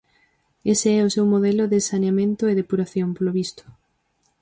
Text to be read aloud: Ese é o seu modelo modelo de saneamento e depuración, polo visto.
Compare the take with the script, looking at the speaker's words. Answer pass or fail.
fail